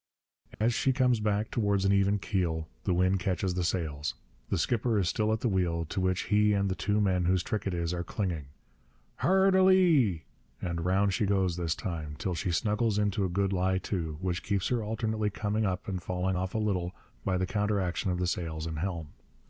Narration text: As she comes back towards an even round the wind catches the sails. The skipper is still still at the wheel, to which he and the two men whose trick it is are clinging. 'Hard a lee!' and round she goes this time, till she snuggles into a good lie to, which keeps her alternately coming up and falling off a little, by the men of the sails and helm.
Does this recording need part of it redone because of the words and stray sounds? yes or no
yes